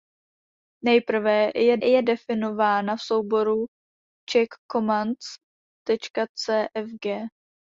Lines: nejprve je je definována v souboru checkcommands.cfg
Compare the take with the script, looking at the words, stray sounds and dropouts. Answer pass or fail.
pass